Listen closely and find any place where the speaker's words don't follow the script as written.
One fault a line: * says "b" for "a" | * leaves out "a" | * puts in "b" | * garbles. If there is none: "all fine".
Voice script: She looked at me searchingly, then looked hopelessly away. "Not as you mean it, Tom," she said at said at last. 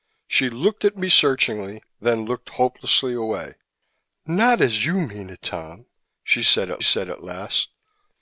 all fine